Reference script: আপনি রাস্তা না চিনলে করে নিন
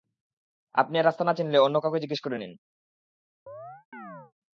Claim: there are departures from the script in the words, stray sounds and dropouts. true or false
true